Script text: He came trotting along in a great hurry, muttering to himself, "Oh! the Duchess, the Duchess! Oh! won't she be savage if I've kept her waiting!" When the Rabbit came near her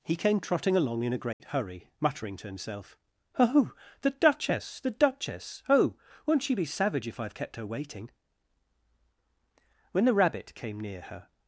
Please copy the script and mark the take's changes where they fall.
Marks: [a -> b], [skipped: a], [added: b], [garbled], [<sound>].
He came trotting along in a great [dropout] hurry, muttering to himself, "Oh! the Duchess, the Duchess! Oh! won't she be savage if I've kept her waiting!" When the Rabbit came near her